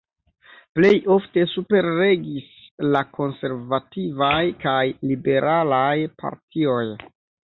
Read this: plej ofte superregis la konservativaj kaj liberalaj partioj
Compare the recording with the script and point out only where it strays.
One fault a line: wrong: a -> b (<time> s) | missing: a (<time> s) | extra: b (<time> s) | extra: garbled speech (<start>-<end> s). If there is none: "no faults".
no faults